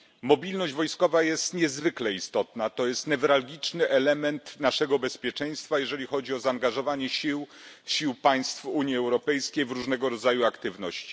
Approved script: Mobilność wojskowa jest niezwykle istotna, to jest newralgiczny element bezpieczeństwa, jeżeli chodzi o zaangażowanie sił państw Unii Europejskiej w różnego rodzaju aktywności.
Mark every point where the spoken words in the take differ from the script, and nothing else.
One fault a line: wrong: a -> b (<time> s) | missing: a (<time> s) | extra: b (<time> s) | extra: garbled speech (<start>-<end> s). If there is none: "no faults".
extra: naszego (4.6 s)